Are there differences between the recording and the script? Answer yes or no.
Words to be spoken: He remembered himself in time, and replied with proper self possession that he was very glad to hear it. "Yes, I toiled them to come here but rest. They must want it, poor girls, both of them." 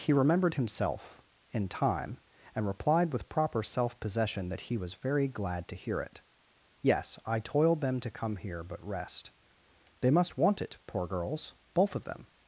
no